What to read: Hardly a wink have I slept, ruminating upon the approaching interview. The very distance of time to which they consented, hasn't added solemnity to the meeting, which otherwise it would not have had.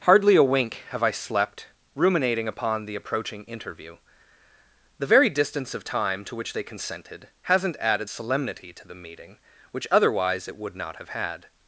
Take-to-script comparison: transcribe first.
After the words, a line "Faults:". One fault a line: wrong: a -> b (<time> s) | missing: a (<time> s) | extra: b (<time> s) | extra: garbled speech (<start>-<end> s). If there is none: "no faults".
Hardly a wink have I slept, ruminating upon the approaching interview. The very distance of time to which they consented, hasn't added solemnity to the meeting, which otherwise it would not have had.
Faults:
no faults